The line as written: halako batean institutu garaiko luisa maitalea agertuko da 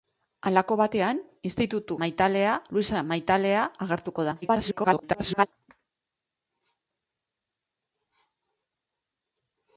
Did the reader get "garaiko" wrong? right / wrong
wrong